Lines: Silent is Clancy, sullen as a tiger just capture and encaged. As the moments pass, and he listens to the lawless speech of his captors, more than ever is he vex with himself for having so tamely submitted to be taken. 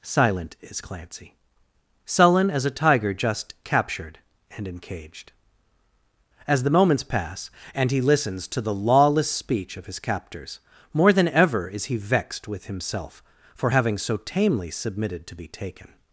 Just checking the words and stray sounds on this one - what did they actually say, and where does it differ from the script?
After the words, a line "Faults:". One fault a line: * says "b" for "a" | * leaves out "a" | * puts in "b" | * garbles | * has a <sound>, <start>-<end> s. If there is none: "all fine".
Silent is Clancy, sullen as a tiger just captured and encaged. As the moments pass, and he listens to the lawless speech of his captors, more than ever is he vexed with himself for having so tamely submitted to be taken.
Faults:
* says "captured" for "capture"
* says "vexed" for "vex"